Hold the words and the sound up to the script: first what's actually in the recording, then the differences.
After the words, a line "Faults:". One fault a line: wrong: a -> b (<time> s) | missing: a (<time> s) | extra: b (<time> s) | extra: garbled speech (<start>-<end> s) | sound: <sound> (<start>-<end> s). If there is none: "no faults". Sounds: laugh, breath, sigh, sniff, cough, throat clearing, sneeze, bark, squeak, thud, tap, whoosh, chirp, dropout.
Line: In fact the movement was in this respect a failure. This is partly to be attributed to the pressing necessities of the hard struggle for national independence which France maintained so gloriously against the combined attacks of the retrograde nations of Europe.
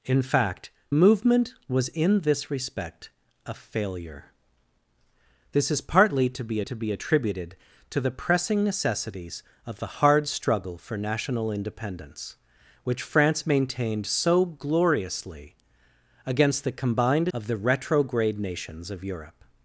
In fact movement was in this respect a failure. This is partly to be to be attributed to the pressing necessities of the hard struggle for national independence which France maintained so gloriously against the combined of the retrograde nations of Europe.
Faults:
missing: the (0.7 s)
extra: to be (6.6 s)
missing: attacks (17.3 s)